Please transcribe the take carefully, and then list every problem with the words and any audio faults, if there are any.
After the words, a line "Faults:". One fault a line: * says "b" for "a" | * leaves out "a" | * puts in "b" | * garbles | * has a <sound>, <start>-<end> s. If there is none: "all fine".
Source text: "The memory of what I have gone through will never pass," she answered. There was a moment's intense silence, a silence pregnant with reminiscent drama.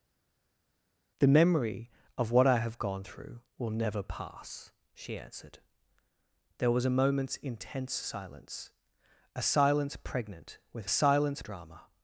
"The memory of what I have gone through will never pass," she answered. There was a moment's intense silence, a silence pregnant with silence drama.
Faults:
* says "silence" for "reminiscent"